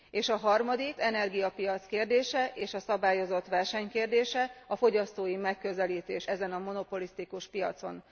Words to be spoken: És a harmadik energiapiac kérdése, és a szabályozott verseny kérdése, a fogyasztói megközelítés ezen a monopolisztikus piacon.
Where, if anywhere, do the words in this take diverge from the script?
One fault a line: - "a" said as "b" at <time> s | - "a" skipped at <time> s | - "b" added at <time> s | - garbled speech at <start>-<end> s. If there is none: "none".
none